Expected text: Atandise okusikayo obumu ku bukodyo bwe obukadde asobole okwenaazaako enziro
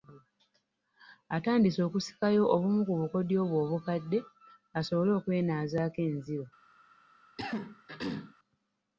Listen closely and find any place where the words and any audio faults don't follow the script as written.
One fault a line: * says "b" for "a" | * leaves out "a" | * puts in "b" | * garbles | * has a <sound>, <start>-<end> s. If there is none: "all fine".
* has a throat clearing, 7.4-8.3 s